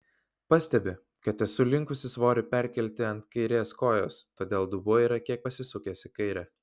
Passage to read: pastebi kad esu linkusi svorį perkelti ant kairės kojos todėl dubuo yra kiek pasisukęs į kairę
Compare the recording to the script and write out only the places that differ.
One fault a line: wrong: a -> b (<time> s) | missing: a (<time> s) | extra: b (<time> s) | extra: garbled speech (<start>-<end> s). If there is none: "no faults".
no faults